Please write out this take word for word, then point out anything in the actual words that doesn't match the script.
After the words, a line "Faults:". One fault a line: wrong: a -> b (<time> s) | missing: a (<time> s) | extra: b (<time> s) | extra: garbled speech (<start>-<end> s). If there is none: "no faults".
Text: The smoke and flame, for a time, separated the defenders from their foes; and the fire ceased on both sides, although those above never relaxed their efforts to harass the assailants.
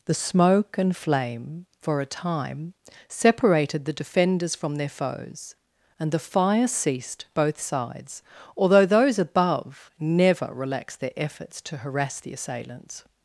The smoke and flame, for a time, separated the defenders from their foes; and the fire ceased both sides, although those above never relaxed their efforts to harass the assailants.
Faults:
missing: on (7.2 s)